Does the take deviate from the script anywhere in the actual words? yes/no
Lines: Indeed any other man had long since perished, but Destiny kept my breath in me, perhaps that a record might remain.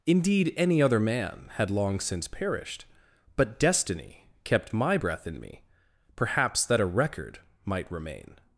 no